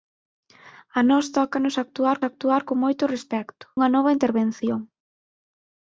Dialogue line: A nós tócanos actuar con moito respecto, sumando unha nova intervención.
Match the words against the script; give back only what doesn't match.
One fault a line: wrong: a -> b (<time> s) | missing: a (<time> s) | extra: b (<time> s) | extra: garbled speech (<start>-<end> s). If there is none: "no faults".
extra: actuar (2.3 s)
missing: sumando (3.7 s)